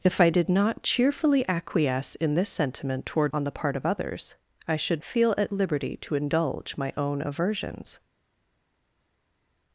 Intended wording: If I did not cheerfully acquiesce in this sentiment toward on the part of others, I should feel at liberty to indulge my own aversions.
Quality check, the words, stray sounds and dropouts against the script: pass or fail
pass